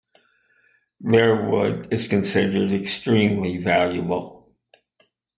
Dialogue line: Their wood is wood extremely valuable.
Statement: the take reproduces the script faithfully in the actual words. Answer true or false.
false